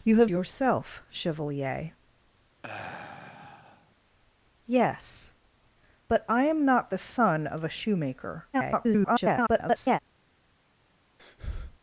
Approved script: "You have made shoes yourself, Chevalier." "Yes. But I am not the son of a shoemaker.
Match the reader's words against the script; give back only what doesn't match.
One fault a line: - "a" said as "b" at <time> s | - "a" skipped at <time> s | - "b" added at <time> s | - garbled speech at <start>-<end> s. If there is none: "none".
- "made shoes" skipped at 0.3 s
- garbled speech at 8.5-10.0 s